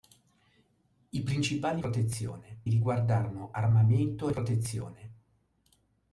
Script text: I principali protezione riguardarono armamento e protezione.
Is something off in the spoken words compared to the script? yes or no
no